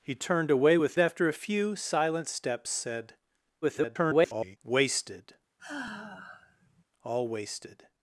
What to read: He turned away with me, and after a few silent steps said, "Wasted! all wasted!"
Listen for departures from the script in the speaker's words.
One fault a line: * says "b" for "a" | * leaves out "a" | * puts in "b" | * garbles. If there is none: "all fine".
* leaves out "me and"
* garbles